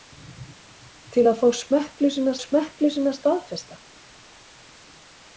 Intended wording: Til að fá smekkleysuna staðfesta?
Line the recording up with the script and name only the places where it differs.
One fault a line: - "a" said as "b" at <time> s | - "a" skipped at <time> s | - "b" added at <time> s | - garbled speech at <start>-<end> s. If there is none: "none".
- "smekkleysuna" added at 2.4 s